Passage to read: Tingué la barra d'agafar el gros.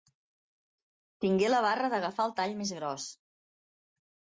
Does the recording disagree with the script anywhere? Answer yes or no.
yes